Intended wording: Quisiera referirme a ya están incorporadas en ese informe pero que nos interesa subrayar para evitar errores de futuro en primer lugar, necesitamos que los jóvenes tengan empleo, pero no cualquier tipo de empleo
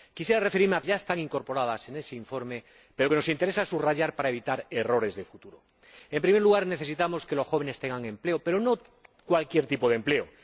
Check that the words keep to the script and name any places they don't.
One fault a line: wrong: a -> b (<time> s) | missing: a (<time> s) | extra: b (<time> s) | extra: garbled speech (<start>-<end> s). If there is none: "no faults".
no faults